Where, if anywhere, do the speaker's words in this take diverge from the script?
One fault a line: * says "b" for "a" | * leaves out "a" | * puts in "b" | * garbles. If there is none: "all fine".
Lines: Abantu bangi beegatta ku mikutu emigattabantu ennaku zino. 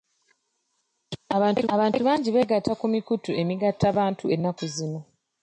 * puts in "abantu"